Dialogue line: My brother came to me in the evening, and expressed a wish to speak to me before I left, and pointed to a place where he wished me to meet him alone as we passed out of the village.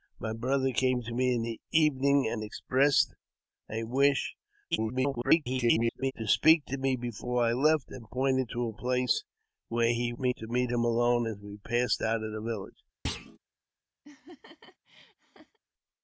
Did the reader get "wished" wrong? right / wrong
wrong